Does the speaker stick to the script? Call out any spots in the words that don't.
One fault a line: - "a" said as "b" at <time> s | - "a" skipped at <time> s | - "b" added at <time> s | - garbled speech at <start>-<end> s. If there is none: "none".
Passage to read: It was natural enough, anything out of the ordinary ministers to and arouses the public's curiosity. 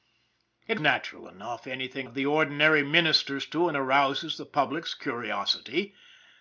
- "was" skipped at 0.8 s
- "out" skipped at 2.1 s